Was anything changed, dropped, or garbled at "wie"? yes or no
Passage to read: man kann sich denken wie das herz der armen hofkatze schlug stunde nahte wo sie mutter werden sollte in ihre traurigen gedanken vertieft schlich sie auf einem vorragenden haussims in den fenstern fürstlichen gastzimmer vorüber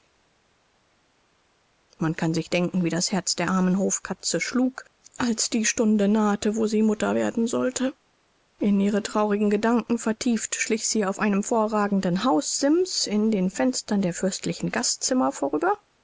no